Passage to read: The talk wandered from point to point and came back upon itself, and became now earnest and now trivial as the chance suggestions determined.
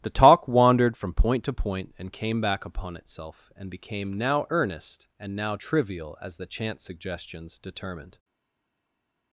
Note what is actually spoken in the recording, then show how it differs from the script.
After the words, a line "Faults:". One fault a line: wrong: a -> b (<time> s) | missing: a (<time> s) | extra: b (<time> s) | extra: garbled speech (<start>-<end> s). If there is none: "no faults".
The talk wandered from point to point and came back upon itself, and became now earnest and now trivial as the chance suggestions determined.
Faults:
no faults